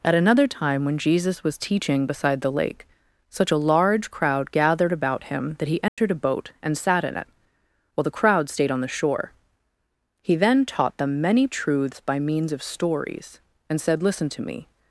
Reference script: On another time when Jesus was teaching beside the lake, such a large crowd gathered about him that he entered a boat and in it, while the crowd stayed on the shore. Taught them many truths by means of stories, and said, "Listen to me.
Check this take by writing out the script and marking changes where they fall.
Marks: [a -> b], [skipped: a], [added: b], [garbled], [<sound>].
[On -> At] another time when Jesus was teaching beside the lake, such a large crowd gathered about him that he entered [dropout] a boat and [added: sat] in it, while the crowd stayed on the shore. [added: He then] Taught them many truths by means of stories, and said, "Listen to me.